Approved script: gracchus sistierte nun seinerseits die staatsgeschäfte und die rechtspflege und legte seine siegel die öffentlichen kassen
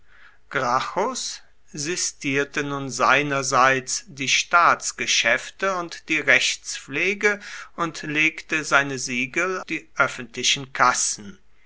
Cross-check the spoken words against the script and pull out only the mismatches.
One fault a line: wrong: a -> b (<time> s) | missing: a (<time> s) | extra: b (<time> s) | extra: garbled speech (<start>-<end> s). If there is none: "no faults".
no faults